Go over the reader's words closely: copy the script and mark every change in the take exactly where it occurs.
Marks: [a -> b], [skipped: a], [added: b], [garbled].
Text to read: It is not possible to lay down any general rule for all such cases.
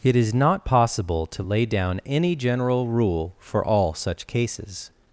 It is not possible to lay down any general rule for all such cases.